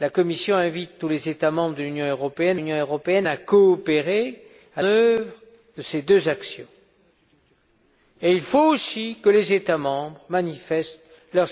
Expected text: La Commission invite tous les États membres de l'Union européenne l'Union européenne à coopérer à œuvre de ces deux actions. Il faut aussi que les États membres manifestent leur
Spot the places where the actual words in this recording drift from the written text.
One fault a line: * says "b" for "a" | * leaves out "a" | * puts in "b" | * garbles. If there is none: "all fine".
all fine